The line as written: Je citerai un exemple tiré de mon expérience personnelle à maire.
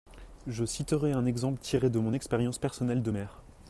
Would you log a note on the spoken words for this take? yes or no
yes